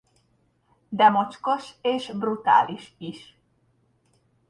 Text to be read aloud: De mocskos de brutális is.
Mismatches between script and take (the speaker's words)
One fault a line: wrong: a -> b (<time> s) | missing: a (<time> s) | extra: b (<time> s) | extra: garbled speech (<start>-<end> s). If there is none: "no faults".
wrong: de -> és (1.8 s)